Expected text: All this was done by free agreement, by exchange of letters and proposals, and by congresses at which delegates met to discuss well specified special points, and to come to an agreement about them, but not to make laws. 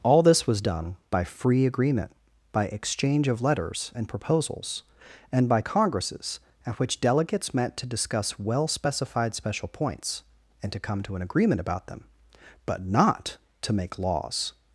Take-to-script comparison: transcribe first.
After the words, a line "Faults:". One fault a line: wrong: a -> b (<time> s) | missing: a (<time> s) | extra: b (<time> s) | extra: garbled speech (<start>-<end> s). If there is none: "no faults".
All this was done by free agreement, by exchange of letters and proposals, and by congresses at which delegates met to discuss well specified special points, and to come to an agreement about them, but not to make laws.
Faults:
no faults